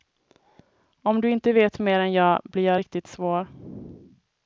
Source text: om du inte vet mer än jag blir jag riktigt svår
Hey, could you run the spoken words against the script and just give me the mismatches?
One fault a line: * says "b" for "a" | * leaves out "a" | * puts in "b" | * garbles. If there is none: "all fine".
all fine